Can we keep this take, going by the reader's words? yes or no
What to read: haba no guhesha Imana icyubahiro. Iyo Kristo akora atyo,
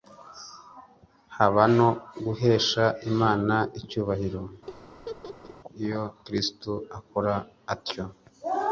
yes